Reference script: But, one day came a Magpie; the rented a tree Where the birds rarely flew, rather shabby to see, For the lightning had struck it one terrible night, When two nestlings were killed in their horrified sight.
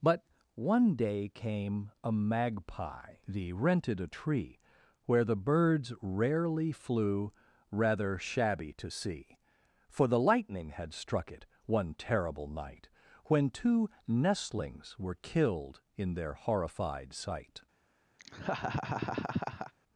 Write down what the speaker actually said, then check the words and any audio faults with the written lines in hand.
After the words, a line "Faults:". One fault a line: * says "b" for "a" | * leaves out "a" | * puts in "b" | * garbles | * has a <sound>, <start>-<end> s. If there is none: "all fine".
But, one day came a Magpie; the rented a tree Where the birds rarely flew, rather shabby to see, For the lightning had struck it one terrible night, When two nestlings were killed in their horrified sight.
Faults:
* has a laugh, 18.2-19.7 s